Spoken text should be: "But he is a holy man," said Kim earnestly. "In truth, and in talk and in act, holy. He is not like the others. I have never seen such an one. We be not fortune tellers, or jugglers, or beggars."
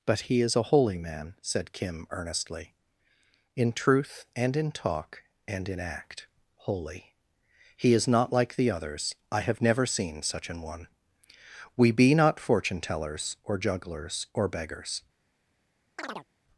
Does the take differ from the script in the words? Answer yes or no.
no